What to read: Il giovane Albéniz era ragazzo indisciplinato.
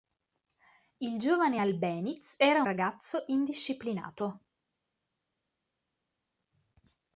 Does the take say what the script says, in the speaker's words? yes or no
yes